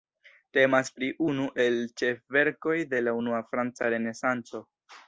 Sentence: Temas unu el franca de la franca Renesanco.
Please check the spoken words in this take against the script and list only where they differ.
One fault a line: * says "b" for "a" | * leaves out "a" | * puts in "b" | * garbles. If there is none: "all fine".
* puts in "pri"
* says "ĉefverkoj" for "franca"
* puts in "unua"